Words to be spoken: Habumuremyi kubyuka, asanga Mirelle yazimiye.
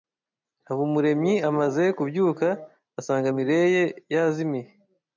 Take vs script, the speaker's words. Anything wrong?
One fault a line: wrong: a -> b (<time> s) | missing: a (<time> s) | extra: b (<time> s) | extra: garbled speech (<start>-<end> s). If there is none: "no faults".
extra: amaze (1.5 s)